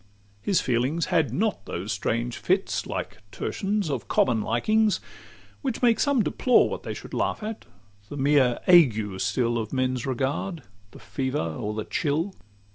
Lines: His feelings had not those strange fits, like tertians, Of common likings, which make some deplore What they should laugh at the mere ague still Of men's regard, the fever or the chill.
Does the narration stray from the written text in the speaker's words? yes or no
no